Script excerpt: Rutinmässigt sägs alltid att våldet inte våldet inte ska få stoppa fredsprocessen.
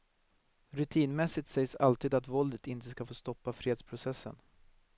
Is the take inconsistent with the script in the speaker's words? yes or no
yes